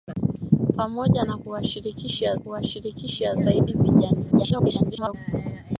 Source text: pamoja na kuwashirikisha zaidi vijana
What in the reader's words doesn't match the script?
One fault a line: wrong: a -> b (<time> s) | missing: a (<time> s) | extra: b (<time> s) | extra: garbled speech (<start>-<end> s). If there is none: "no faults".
extra: kuwashirikisha (2.4 s)
extra: garbled speech (4.3-5.1 s)